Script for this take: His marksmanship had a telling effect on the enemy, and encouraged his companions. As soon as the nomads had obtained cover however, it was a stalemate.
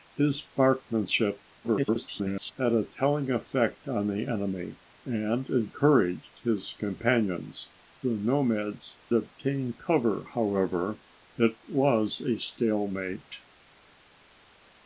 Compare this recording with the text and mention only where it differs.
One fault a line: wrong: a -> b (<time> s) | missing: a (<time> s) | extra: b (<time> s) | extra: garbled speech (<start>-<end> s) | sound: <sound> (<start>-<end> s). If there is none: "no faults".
extra: garbled speech (1.6-2.5 s)
missing: As soon as (7.7 s)
missing: had (9.0 s)